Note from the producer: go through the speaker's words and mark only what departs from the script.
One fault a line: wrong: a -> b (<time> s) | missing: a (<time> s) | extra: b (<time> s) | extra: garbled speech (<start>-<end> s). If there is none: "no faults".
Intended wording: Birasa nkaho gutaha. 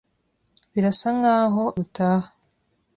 no faults